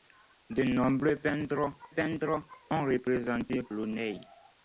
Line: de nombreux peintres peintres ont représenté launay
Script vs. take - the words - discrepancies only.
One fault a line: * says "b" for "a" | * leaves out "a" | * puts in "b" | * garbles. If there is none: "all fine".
all fine